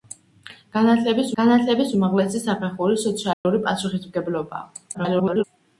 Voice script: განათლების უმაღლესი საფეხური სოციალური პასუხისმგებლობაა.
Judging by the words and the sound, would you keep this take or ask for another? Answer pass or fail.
fail